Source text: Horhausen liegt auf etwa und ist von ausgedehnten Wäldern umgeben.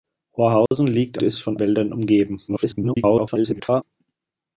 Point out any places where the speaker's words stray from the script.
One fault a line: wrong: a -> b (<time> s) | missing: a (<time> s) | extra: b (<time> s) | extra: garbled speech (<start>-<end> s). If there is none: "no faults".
missing: auf etwa und (1.2 s)
missing: ausgedehnten (1.6 s)
extra: garbled speech (2.5-3.8 s)